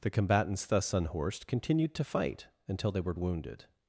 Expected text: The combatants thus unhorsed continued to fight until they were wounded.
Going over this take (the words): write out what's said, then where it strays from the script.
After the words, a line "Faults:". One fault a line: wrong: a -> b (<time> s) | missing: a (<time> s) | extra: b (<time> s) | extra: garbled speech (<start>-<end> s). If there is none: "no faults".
The combatants thus unhorsed continued to fight until they were wounded.
Faults:
no faults